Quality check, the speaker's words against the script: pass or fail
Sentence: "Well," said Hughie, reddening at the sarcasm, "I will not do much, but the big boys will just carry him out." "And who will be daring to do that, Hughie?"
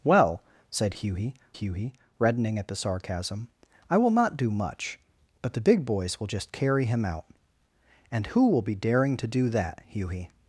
fail